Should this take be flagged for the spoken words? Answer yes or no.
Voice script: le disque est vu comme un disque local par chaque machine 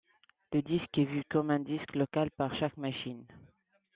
no